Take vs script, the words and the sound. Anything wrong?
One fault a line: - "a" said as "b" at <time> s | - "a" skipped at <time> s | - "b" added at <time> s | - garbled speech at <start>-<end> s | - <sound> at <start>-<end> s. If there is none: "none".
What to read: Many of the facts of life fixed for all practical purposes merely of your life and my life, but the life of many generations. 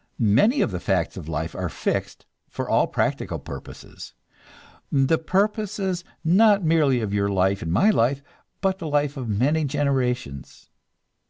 - "are" added at 1.5 s
- "the purposes not" added at 4.9 s